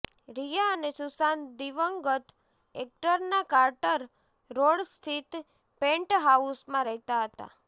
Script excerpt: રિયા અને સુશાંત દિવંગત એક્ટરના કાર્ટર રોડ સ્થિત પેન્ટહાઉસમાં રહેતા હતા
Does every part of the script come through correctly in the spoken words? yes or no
yes